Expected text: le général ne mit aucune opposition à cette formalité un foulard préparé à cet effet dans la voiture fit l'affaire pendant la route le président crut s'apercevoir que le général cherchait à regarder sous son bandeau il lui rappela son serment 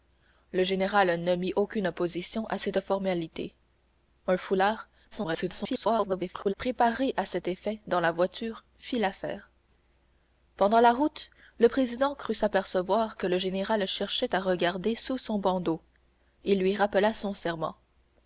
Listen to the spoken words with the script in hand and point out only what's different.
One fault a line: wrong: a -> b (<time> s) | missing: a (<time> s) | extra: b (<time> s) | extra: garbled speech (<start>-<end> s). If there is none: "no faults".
extra: garbled speech (5.1-6.5 s)